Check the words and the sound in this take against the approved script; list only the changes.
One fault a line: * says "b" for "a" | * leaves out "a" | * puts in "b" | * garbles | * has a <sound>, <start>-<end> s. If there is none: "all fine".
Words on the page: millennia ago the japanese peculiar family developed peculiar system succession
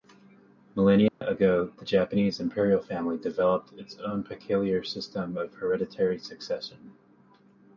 * has a dropout, 1.1-1.2 s
* says "imperial" for "peculiar"
* puts in "its own"
* puts in "of hereditary"